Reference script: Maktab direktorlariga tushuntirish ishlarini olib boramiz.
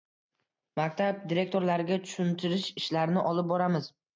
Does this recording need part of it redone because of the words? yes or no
no